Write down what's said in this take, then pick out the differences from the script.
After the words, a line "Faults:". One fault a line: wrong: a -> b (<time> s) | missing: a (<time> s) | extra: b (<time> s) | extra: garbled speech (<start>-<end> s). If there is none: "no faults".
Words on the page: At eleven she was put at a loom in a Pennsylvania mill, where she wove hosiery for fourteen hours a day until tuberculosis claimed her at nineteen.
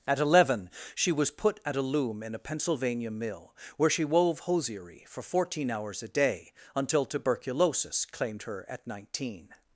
At eleven she was put at a loom in a Pennsylvania mill, where she wove hosiery for fourteen hours a day until tuberculosis claimed her at nineteen.
Faults:
no faults